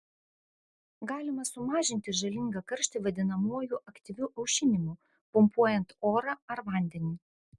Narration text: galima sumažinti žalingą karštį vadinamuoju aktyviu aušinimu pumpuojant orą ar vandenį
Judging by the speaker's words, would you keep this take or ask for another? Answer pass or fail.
pass